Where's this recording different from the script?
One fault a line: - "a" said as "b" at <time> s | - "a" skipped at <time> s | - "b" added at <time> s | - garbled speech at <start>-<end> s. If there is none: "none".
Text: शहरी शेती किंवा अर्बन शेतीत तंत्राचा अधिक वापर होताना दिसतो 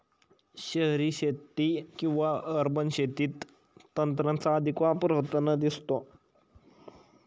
none